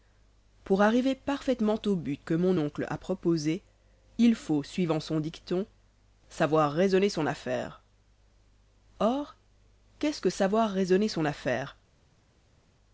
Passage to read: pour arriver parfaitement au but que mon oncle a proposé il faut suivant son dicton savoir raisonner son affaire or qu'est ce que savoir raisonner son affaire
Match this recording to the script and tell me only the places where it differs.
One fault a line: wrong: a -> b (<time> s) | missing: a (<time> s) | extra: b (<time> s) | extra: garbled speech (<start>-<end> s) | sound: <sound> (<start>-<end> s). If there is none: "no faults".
no faults